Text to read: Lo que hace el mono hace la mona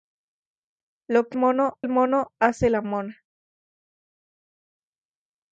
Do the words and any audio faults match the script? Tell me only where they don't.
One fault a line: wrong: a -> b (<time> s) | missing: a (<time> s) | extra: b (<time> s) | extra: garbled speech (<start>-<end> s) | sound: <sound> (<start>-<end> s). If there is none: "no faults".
wrong: hace -> mono (1.3 s)